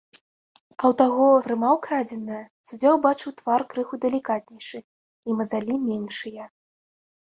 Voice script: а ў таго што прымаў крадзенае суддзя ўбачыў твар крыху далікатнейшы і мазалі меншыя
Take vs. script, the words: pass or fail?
fail